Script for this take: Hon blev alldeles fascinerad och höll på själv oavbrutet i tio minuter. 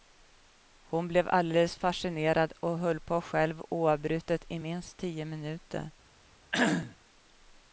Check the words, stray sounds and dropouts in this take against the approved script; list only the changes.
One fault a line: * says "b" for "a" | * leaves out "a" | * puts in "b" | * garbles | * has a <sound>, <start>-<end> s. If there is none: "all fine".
* puts in "minst"
* has a cough, 6.5-7.0 s